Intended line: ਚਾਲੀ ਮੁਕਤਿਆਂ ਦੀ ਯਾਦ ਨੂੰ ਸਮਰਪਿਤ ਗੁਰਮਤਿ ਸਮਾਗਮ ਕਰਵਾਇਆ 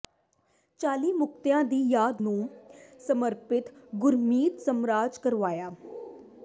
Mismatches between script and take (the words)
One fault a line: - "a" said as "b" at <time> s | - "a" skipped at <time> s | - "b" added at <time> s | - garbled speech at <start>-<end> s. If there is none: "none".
none